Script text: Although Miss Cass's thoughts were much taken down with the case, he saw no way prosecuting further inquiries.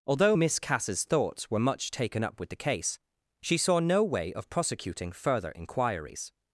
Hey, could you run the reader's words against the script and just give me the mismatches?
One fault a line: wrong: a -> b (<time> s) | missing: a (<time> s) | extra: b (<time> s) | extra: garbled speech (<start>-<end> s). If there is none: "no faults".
wrong: down -> up (2.2 s)
wrong: he -> she (3.4 s)
extra: of (4.3 s)